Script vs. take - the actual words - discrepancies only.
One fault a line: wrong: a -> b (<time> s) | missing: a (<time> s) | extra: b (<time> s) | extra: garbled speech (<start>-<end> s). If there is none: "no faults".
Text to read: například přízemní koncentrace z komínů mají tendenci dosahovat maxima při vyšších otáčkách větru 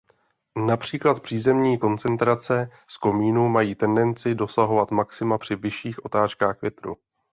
no faults